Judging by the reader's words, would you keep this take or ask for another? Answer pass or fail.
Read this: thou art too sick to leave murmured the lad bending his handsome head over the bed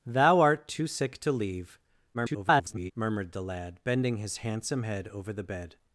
fail